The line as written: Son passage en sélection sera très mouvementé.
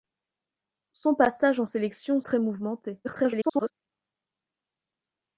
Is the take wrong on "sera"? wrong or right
wrong